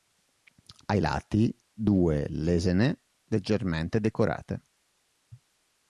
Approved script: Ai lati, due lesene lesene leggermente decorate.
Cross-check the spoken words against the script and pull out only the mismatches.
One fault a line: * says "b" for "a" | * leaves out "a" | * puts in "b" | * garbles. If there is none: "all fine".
* leaves out "lesene"